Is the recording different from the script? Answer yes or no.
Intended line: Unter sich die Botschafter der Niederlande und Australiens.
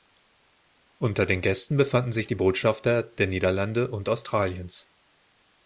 yes